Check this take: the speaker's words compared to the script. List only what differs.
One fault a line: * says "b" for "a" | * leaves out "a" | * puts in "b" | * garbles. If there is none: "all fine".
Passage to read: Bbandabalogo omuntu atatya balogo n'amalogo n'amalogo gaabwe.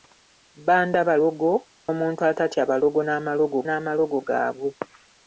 all fine